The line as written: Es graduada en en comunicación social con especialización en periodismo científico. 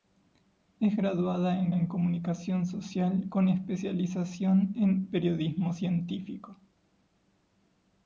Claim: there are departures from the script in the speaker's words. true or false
false